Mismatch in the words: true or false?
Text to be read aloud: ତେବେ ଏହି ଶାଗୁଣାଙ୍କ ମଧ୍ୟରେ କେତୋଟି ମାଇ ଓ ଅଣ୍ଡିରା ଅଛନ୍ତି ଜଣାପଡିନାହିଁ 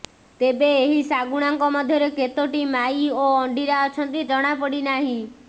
false